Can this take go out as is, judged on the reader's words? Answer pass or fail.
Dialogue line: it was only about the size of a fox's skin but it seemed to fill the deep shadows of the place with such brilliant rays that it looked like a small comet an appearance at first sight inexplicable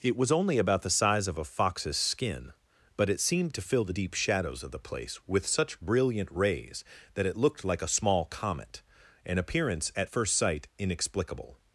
pass